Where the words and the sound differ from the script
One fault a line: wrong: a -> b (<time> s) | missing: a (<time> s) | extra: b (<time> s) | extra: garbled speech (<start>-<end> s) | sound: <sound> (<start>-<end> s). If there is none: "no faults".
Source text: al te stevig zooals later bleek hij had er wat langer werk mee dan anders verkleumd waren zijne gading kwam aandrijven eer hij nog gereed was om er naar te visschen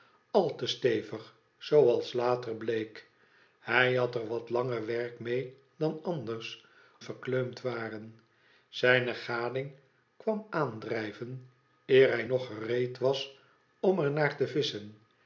no faults